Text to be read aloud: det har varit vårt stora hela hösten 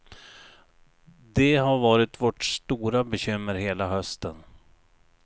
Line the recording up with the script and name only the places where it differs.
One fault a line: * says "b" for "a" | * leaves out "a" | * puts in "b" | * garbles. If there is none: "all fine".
* puts in "bekymmer"